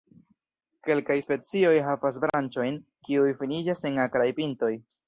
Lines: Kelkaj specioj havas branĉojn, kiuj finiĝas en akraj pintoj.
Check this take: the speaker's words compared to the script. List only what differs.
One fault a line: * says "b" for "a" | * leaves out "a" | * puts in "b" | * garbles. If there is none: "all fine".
all fine